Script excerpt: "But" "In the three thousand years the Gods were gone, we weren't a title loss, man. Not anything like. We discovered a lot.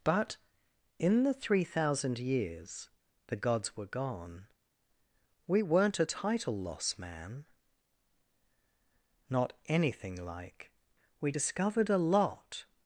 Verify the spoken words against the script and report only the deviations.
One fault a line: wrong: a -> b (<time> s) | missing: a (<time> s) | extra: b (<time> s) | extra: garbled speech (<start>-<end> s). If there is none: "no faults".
no faults